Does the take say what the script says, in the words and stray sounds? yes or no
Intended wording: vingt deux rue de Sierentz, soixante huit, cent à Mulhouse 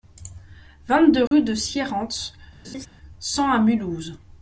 no